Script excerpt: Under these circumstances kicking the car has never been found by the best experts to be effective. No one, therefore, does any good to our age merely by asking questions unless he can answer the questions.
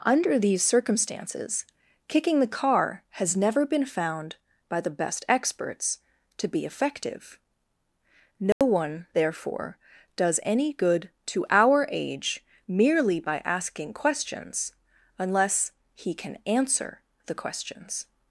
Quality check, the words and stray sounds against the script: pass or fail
fail